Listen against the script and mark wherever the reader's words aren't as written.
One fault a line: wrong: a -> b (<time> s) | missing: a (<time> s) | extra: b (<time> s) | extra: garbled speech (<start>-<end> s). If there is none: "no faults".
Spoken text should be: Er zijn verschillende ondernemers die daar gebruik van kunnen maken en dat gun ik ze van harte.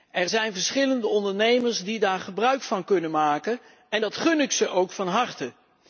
extra: ook (4.7 s)